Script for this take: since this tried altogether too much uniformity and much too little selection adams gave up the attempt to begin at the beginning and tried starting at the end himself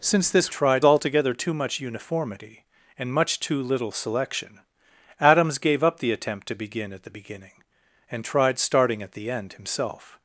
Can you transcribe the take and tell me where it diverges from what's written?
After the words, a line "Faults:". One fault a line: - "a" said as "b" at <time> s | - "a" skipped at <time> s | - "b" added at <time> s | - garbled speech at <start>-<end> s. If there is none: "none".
since this tried altogether too much uniformity and much too little selection adams gave up the attempt to begin at the beginning and tried starting at the end himself
Faults:
none